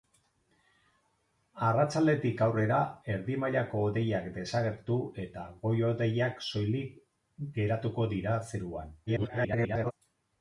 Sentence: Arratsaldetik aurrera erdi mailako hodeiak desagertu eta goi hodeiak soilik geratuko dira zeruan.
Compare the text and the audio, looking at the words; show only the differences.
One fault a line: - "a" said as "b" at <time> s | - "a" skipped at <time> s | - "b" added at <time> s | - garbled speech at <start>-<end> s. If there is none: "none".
- garbled speech at 9.1-9.9 s